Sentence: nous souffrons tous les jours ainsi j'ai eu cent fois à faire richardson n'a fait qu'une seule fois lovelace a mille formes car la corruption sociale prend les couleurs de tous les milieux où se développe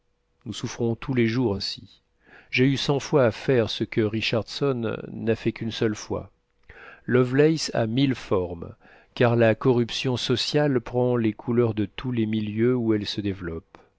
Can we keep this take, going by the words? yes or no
no